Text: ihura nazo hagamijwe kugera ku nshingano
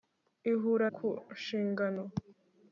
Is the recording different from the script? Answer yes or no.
yes